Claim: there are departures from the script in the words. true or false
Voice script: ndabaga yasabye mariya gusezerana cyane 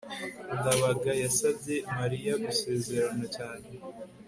false